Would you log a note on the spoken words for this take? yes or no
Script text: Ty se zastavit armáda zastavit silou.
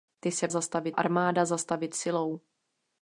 no